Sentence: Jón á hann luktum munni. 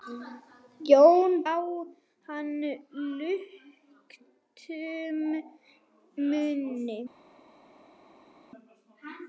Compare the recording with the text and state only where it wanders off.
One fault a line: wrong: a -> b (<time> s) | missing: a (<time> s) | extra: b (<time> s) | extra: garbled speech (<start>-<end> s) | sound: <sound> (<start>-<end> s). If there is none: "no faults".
no faults